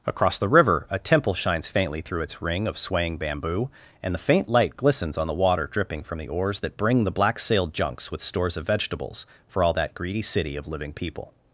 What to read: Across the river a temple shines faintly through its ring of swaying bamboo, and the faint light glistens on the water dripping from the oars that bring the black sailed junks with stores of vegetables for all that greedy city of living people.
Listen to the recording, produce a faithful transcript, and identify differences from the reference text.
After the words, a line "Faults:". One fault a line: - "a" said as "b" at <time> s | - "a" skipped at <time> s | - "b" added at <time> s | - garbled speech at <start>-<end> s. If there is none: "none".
Across the river a temple shines faintly through its ring of swaying bamboo, and the faint light glistens on the water dripping from the oars that bring the black sailed junks with stores of vegetables for all that greedy city of living people.
Faults:
none